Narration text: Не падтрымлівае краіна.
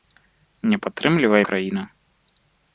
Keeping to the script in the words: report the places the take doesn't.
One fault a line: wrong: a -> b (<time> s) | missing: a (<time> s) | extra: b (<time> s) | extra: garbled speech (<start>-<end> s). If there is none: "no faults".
no faults